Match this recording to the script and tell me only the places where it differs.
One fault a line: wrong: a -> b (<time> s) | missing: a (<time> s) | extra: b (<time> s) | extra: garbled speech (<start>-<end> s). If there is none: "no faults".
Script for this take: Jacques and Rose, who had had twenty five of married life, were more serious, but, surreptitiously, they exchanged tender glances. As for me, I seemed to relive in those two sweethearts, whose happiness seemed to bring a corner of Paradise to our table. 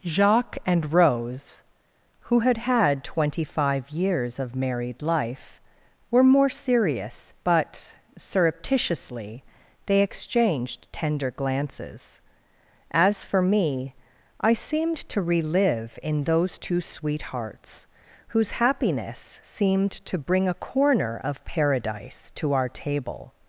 extra: years (3.9 s)